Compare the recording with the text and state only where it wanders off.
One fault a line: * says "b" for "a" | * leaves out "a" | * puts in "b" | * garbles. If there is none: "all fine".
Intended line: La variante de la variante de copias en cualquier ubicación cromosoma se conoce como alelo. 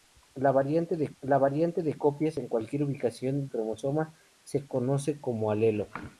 all fine